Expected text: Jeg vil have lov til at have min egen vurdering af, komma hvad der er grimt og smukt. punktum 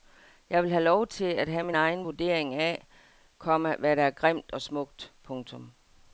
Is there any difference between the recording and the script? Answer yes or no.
no